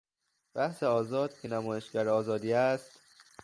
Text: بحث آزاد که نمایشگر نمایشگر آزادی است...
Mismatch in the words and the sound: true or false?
true